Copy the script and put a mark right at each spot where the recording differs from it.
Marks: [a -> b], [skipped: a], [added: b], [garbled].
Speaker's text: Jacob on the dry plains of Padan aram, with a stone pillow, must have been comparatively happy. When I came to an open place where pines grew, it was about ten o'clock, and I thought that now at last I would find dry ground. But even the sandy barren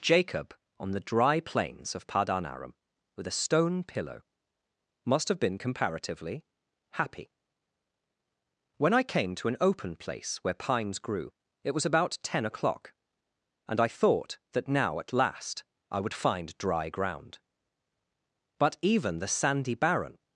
Jacob on the dry plains of Padan aram, with a stone pillow, must have been comparatively happy. When I came to an open place where pines grew, it was about ten o'clock, and I thought that now at last I would find dry ground. But even the sandy barren